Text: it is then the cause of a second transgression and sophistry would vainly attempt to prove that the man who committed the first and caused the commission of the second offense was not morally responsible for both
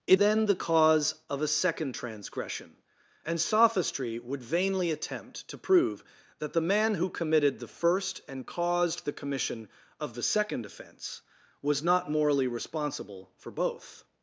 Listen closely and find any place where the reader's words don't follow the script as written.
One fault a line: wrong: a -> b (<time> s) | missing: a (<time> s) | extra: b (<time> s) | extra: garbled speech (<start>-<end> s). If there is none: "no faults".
missing: is (0.2 s)